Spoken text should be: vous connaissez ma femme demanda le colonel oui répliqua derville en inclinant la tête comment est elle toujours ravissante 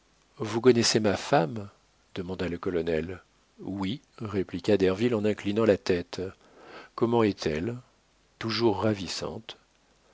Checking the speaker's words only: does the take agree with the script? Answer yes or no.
yes